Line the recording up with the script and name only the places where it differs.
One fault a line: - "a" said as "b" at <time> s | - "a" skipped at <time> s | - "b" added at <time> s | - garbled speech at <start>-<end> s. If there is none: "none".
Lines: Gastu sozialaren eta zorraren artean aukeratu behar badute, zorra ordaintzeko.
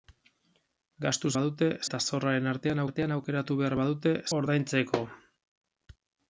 - "sozialaren" said as "badute" at 1.4 s
- "artean" added at 2.9 s
- "zorra" skipped at 4.2 s